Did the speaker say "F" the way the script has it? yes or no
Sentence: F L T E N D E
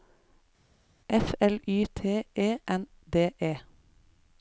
yes